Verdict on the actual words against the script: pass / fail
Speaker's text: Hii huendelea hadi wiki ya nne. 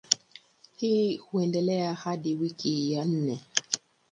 pass